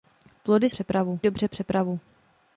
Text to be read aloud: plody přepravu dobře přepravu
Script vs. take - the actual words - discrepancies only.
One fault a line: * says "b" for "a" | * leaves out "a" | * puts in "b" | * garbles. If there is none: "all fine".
all fine